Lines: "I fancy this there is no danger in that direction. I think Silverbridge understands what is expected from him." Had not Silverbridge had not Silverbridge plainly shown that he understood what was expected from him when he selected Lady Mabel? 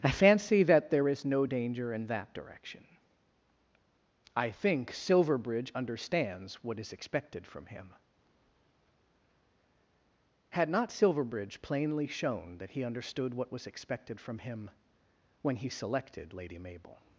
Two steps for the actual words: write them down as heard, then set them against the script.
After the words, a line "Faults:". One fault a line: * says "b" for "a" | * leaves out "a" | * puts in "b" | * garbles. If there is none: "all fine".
"I fancy that there is no danger in that direction. I think Silverbridge understands what is expected from him." Had not Silverbridge plainly shown that he understood what was expected from him when he selected Lady Mabel?
Faults:
* says "that" for "this"
* leaves out "had not Silverbridge"